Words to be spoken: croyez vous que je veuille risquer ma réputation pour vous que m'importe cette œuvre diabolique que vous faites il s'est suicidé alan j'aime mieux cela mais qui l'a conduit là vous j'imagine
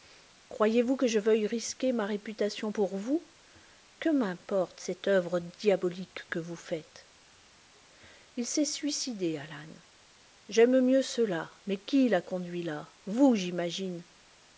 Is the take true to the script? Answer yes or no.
yes